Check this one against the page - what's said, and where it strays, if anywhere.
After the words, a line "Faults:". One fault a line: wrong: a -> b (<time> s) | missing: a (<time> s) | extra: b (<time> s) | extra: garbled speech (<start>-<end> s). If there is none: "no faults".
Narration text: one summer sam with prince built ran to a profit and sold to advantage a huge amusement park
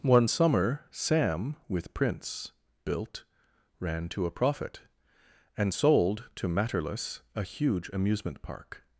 one summer sam with prince built ran to a profit and sold to matterless a huge amusement park
Faults:
wrong: advantage -> matterless (6.5 s)